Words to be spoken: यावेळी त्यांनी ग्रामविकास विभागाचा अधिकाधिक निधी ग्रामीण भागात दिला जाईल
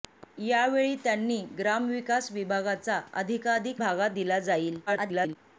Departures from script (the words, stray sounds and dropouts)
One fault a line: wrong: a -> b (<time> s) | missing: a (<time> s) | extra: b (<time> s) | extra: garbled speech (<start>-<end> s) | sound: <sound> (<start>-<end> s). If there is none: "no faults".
missing: निधी ग्रामीण (3.8 s)
extra: garbled speech (4.9-5.4 s)